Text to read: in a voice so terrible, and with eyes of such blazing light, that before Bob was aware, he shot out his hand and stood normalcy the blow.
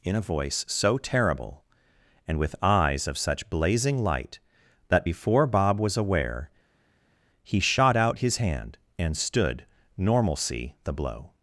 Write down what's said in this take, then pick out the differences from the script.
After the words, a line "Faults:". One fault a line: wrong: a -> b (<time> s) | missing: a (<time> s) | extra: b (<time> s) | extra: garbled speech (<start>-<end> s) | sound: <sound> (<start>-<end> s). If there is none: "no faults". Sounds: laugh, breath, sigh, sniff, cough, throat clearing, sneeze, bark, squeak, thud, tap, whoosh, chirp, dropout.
in a voice so terrible, and with eyes of such blazing light, that before Bob was aware, he shot out his hand and stood normalcy the blow.
Faults:
no faults